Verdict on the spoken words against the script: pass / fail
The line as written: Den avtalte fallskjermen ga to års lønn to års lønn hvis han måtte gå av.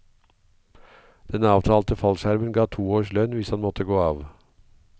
fail